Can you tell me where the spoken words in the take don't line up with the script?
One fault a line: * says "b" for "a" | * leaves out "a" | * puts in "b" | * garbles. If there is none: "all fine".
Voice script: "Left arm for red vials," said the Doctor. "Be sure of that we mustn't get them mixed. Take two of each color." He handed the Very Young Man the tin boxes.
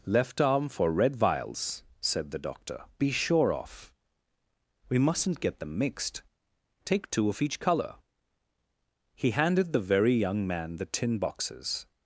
* leaves out "that"